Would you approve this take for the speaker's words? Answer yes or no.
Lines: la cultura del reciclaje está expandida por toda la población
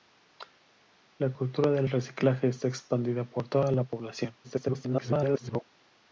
no